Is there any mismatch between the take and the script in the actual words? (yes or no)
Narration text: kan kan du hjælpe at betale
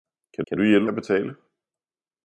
no